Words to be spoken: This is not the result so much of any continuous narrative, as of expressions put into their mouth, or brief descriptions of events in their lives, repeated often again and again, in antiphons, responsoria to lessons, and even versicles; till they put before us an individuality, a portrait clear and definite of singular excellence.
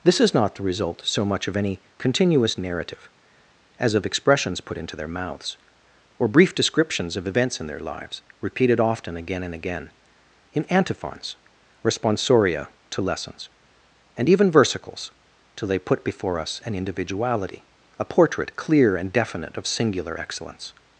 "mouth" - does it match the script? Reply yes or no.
no